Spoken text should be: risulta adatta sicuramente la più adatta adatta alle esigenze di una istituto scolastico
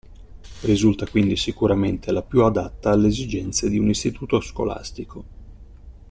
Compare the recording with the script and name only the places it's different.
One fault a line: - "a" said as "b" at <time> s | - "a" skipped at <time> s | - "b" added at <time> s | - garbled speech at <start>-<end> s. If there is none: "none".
- "adatta" said as "quindi" at 1.1 s
- "adatta" skipped at 2.9 s
- "una" said as "un" at 3.8 s